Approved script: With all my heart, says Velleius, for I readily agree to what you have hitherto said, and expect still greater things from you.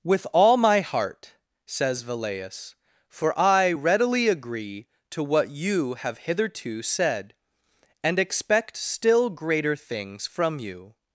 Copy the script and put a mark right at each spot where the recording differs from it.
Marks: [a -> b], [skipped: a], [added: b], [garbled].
With all my heart, says Velleius, for I readily agree to what you have hitherto said, and expect still greater things from you.